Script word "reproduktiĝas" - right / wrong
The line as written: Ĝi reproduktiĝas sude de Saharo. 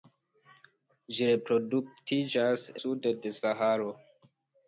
right